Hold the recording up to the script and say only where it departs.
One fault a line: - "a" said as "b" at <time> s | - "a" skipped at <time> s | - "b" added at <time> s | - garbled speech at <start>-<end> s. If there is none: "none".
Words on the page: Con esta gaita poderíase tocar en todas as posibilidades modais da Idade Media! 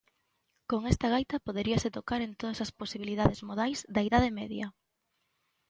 none